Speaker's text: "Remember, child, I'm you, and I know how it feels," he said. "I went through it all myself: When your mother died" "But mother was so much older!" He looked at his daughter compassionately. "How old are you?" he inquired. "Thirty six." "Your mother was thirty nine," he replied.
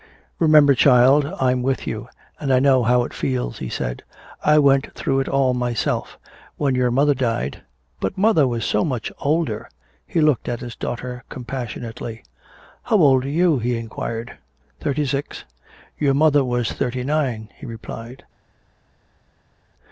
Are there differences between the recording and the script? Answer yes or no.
yes